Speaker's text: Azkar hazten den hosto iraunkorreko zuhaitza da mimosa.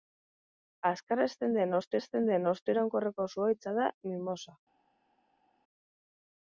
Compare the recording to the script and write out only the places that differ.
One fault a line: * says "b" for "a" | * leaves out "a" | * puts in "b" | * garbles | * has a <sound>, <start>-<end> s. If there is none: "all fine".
* puts in "hazten den hosto"